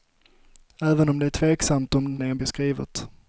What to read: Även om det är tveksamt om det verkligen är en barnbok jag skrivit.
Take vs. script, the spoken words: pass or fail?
fail